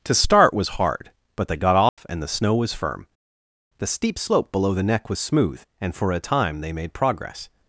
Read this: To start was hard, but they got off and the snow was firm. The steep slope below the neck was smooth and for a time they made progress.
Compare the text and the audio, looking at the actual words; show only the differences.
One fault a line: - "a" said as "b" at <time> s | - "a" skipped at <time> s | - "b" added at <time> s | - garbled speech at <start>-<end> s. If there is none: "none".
none